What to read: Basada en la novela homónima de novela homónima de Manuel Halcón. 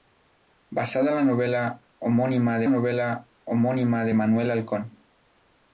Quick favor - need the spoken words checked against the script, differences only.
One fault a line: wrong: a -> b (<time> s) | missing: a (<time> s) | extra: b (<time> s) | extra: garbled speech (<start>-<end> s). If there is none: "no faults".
no faults